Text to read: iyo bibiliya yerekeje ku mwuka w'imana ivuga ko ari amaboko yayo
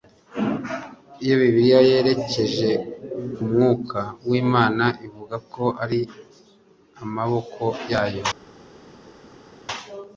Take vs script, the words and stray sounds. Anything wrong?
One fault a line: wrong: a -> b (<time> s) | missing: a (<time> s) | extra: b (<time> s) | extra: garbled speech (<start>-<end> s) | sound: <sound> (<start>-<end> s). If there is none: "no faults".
no faults